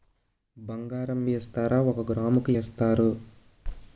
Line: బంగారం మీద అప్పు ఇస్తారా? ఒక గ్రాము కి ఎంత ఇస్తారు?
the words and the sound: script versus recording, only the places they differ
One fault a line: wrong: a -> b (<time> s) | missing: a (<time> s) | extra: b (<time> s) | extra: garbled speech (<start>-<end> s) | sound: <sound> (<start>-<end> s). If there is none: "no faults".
missing: మీద అప్పు (1.3 s)
missing: ఎంత (2.5 s)